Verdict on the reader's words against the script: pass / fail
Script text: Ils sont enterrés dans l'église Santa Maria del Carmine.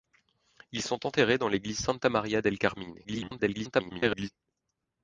fail